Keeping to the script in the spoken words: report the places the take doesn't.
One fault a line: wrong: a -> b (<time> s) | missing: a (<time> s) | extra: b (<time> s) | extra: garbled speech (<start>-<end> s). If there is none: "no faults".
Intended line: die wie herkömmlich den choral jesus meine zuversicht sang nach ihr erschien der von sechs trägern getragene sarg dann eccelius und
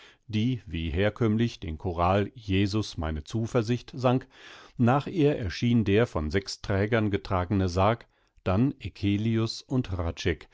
no faults